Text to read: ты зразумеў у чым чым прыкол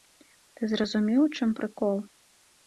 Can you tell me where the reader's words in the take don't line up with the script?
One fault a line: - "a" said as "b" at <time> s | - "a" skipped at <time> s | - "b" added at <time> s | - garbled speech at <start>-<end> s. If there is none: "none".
- "чым" skipped at 1.5 s